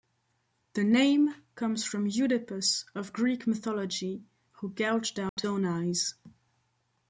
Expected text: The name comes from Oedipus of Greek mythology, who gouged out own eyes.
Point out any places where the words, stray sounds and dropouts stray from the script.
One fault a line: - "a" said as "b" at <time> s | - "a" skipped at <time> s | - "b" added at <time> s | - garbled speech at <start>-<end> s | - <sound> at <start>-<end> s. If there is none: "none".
- dropout at 5.3-5.4 s